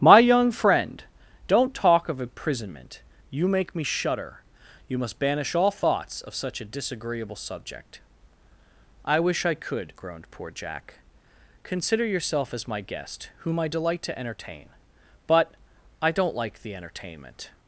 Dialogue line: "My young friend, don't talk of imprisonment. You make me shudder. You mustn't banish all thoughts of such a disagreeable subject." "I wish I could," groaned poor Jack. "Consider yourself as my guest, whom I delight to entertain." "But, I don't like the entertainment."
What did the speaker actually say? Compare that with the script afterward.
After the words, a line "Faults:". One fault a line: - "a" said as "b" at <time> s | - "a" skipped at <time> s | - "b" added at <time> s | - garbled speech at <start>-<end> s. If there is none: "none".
"My young friend, don't talk of imprisonment. You make me shudder. You must banish all thoughts of such a disagreeable subject." "I wish I could," groaned poor Jack. "Consider yourself as my guest, whom I delight to entertain." "But, I don't like the entertainment."
Faults:
- "mustn't" said as "must" at 5.0 s